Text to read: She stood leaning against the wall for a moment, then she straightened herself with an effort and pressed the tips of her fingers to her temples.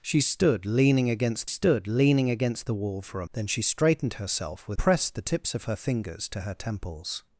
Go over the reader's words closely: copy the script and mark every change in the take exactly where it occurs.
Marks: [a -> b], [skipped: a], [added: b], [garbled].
She stood leaning against [added: stood leaning against] the wall for a [skipped: moment,] then she straightened herself with [skipped: an effort and] pressed the tips of her fingers to her temples.